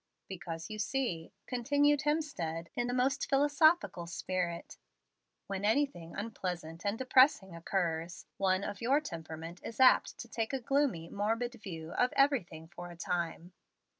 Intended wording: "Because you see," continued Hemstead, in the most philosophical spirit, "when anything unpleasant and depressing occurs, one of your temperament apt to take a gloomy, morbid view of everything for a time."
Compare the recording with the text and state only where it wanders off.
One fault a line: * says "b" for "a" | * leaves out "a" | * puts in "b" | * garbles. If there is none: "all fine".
* puts in "is"